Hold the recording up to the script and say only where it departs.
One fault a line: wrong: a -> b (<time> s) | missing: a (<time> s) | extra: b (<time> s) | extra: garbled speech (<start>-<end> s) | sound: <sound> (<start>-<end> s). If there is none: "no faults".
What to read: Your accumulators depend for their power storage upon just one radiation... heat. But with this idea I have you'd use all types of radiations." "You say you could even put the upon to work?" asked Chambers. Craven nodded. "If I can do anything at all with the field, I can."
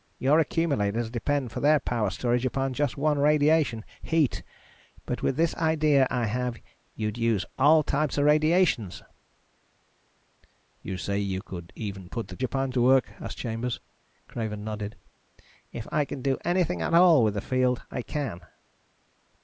no faults